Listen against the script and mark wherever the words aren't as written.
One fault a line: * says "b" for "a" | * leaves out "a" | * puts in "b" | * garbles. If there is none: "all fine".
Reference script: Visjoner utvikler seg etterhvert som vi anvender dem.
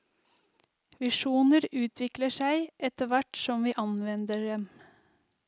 all fine